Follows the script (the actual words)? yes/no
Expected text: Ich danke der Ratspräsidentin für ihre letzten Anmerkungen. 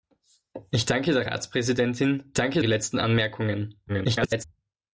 no